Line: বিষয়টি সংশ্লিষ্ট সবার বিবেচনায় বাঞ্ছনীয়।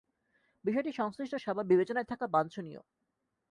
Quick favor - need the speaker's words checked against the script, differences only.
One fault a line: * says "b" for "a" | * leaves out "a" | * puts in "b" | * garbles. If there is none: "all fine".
* puts in "থাকা"